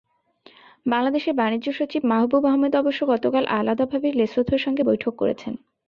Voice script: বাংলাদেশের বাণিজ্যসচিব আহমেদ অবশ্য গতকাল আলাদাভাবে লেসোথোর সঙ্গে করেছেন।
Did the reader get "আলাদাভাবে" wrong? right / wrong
right